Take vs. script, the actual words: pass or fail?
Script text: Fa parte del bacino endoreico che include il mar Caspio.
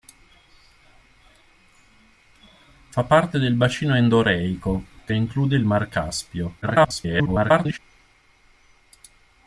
fail